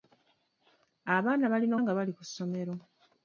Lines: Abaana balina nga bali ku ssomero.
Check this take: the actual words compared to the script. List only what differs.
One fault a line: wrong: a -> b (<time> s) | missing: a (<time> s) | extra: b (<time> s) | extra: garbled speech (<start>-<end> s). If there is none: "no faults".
no faults